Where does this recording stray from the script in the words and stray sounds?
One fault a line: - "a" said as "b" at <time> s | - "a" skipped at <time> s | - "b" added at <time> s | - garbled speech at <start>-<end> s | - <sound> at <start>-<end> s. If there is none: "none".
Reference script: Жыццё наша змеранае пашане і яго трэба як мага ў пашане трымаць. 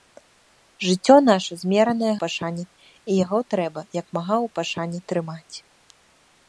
none